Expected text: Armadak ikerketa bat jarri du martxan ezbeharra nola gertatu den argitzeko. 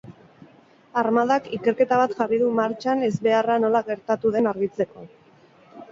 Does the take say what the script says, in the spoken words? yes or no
yes